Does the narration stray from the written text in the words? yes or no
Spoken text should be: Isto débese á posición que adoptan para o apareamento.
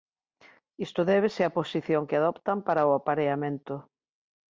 no